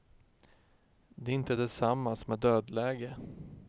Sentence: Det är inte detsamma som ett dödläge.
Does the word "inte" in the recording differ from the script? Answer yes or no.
no